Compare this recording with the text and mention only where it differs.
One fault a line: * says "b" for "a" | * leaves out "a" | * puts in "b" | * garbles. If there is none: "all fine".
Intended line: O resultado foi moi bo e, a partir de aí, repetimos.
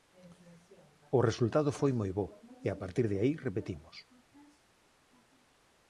all fine